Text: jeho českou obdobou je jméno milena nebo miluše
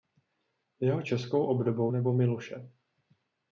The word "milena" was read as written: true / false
false